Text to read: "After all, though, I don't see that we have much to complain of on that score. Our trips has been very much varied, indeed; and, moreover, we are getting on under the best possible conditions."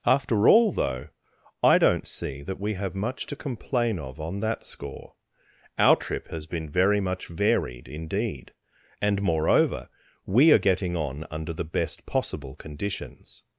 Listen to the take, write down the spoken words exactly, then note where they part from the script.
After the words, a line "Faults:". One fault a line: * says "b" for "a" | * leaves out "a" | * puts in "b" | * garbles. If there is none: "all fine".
"After all, though, I don't see that we have much to complain of on that score. Our trip has been very much varied, indeed; and, moreover, we are getting on under the best possible conditions."
Faults:
* says "trip" for "trips"